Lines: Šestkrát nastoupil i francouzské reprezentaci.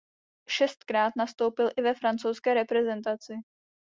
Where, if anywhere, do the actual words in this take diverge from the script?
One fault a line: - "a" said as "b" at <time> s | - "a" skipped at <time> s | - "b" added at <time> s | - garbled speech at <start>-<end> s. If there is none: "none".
- "ve" added at 1.8 s